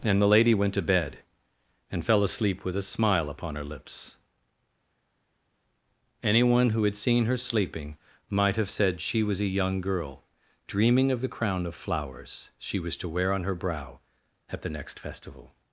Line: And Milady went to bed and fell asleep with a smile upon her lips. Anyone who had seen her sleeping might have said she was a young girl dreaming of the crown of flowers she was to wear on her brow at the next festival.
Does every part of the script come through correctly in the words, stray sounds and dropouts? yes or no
yes